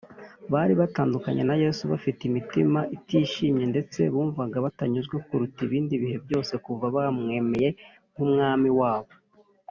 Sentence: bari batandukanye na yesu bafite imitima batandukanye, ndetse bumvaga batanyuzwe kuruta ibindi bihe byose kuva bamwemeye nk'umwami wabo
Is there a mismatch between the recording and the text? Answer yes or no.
yes